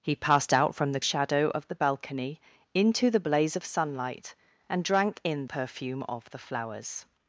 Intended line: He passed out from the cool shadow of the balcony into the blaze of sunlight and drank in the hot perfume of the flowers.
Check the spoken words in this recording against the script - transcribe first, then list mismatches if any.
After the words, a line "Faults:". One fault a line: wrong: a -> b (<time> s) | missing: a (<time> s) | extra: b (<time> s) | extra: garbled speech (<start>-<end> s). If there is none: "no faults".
He passed out from the shadow of the balcony into the blaze of sunlight and drank in perfume of the flowers.
Faults:
missing: cool (1.0 s)
missing: the hot (5.5 s)